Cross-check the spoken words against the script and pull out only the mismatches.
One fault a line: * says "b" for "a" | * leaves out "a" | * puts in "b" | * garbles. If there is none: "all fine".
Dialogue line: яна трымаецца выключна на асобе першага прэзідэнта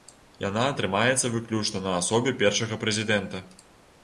all fine